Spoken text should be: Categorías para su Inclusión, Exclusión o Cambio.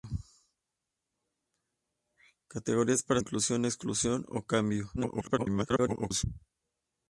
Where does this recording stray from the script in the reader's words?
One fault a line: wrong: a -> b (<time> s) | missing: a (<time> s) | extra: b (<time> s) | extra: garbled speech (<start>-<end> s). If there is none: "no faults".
missing: su (3.2 s)
extra: garbled speech (5.0-6.2 s)